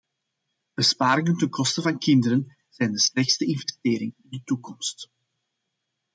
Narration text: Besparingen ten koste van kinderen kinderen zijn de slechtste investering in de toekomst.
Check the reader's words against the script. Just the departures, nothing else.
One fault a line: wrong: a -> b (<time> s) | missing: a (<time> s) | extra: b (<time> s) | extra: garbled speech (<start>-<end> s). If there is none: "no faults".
missing: kinderen (2.6 s)